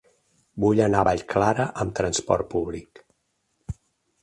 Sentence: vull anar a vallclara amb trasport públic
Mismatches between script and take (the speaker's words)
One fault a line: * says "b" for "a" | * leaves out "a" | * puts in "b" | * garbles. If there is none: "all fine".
all fine